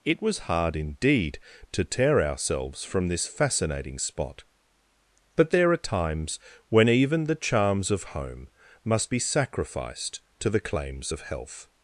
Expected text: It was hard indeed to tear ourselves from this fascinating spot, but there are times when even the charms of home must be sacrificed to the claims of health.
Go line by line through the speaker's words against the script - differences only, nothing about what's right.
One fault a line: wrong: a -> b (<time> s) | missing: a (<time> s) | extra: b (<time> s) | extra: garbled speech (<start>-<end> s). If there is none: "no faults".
no faults